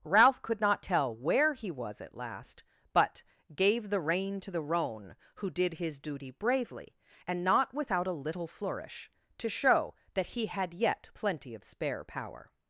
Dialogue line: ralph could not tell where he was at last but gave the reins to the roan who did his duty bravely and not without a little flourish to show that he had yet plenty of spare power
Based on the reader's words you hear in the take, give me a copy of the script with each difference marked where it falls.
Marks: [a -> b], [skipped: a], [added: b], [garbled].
ralph could not tell where he was at last but gave the [reins -> rein] to the roan who did his duty bravely and not without a little flourish to show that he had yet plenty of spare power